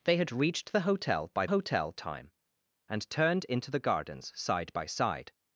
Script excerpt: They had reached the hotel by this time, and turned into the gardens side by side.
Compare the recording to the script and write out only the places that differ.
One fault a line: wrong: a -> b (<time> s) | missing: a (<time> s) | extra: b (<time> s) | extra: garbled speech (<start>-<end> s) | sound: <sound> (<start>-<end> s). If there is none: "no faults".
wrong: this -> hotel (1.5 s)